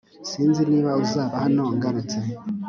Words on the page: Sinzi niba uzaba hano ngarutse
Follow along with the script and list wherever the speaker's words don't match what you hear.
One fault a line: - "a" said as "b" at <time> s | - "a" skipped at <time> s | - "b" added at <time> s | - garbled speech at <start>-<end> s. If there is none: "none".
none